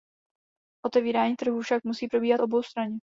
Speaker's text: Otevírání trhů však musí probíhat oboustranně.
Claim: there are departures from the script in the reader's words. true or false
false